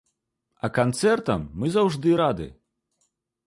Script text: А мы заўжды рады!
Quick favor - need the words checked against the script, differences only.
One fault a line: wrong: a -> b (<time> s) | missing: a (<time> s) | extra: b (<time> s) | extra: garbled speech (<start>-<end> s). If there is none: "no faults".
extra: канцэртам (0.8 s)